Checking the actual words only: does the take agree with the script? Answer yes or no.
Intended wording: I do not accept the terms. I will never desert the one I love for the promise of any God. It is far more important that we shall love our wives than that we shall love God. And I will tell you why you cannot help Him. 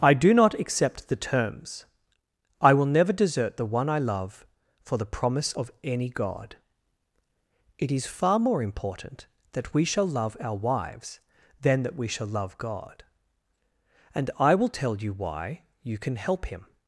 no